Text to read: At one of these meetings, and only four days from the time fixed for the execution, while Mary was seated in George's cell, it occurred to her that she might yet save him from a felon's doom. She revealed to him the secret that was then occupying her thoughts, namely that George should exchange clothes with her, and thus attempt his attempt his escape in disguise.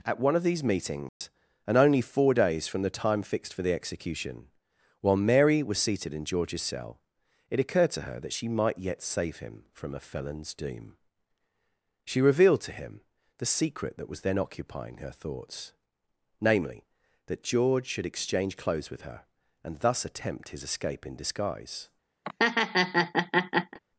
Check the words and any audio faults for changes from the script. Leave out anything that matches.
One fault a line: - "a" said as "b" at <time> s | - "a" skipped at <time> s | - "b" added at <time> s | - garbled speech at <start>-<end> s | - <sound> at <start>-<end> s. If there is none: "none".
- dropout at 1.1-1.2 s
- "attempt his" skipped at 20.6 s
- laugh at 22.2-23.8 s